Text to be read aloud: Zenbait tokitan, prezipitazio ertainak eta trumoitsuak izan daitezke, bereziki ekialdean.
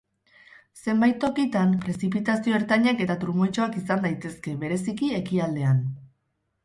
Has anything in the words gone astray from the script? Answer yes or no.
no